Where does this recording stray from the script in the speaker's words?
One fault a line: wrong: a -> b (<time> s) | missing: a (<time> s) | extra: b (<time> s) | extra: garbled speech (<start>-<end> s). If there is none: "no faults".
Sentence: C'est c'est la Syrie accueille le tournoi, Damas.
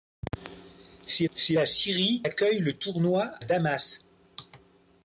no faults